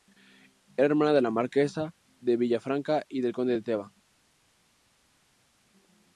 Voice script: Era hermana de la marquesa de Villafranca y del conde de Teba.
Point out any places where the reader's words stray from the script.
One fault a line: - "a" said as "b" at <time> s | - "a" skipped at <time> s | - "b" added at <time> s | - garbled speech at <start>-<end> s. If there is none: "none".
none